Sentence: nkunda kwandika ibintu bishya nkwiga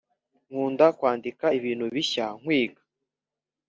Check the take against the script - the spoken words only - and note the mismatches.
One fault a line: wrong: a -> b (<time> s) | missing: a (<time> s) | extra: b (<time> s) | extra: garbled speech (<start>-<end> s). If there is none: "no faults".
no faults